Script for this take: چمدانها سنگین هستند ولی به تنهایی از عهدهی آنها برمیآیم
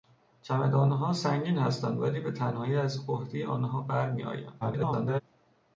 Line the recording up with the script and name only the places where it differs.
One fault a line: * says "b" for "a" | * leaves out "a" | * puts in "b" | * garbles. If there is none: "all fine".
* garbles